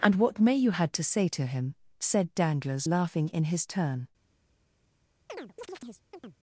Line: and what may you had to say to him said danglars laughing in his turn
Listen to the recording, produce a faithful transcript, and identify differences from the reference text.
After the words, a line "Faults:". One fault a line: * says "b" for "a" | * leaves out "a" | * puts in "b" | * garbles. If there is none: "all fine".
and what may you had to say to him said danglars laughing in his turn
Faults:
all fine